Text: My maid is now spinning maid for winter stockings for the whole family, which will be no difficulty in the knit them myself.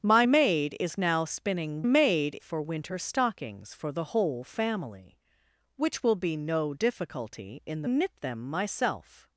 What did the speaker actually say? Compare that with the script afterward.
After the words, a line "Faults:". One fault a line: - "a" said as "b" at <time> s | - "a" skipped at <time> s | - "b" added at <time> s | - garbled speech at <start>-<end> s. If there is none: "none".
My maid is now spinning maid for winter stockings for the whole family, which will be no difficulty in the knit them myself.
Faults:
none